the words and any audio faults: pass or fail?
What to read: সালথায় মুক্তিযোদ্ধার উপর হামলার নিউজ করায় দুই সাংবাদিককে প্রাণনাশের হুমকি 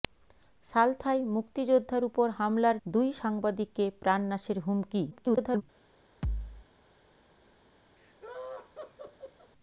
fail